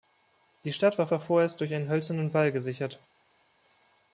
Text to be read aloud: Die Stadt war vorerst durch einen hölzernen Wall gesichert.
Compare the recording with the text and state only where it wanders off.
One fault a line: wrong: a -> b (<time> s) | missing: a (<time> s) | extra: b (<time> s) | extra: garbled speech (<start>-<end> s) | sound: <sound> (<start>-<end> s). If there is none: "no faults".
extra: war (1.1 s)